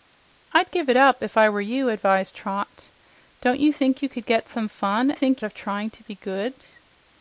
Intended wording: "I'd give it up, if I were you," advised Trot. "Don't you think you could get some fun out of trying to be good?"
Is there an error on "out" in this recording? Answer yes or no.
yes